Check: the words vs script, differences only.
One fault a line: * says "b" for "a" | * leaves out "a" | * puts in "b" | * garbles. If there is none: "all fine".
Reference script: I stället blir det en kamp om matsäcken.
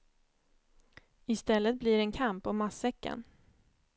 all fine